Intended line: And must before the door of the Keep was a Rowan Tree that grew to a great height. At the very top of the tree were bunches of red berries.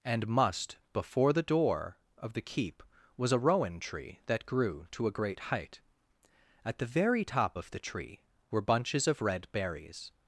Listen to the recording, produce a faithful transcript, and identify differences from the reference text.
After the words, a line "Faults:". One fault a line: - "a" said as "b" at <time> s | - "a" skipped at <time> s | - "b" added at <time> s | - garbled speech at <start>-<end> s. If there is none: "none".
And must before the door of the Keep was a Rowan Tree that grew to a great height. At the very top of the tree were bunches of red berries.
Faults:
none